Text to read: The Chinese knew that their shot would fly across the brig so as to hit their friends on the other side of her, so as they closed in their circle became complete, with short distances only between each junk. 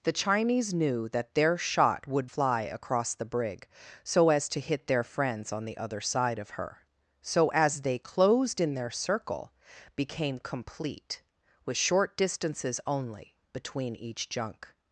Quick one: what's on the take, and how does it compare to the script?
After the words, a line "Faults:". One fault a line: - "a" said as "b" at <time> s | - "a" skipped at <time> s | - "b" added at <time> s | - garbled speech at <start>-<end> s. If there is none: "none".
The Chinese knew that their shot would fly across the brig so as to hit their friends on the other side of her, so as they closed in their circle became complete, with short distances only between each junk.
Faults:
none